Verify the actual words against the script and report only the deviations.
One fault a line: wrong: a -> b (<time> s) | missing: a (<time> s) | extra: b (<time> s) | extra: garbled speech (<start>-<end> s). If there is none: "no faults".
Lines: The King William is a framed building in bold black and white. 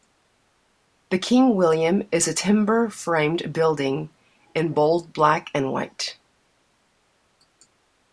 extra: timber (2.3 s)